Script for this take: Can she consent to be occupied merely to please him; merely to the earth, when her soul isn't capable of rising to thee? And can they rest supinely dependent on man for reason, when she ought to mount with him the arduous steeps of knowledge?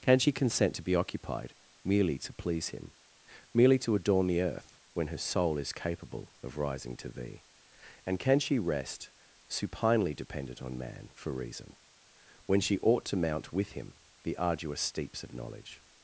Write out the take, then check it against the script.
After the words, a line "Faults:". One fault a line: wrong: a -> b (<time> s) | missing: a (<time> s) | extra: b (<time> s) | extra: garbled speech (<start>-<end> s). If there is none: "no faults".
Can she consent to be occupied merely to please him; merely to adorn the earth, when her soul is capable of rising to thee? And can she rest supinely dependent on man for reason, when she ought to mount with him the arduous steeps of knowledge?
Faults:
extra: adorn (3.9 s)
wrong: isn't -> is (5.6 s)
wrong: they -> she (8.4 s)